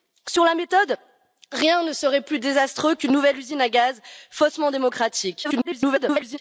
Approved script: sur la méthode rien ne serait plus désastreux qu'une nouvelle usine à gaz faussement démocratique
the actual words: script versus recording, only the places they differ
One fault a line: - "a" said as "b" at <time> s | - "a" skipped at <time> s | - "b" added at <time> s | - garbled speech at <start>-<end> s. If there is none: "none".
- garbled speech at 5.4-6.4 s